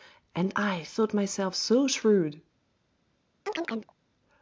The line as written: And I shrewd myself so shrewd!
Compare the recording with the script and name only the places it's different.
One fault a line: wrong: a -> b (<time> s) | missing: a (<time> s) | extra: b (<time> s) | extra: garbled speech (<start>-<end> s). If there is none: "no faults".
wrong: shrewd -> thought (0.8 s)